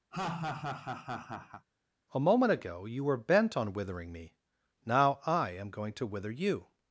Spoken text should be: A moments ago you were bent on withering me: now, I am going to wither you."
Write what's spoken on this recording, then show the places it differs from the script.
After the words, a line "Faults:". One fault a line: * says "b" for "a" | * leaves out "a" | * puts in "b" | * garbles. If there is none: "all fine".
A moment ago you were bent on withering me: now, I am going to wither you."
Faults:
* says "moment" for "moments"